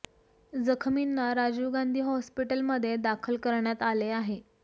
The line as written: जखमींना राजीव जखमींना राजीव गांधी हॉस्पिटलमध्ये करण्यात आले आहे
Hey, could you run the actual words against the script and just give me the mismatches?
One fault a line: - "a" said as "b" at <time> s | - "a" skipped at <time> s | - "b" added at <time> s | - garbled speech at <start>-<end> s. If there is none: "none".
- "जखमींना राजीव" skipped at 1.7 s
- "दाखल" added at 3.0 s